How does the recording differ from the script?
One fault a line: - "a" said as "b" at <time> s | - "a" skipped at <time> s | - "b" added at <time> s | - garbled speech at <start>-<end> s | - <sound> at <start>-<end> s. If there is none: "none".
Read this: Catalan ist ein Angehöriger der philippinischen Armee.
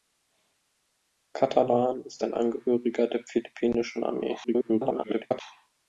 - garbled speech at 4.4-5.4 s